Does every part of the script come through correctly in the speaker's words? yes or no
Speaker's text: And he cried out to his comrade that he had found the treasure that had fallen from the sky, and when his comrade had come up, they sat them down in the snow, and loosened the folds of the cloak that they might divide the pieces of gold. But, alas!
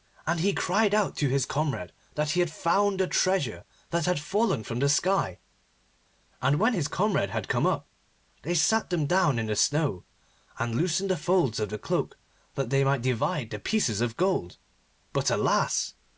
yes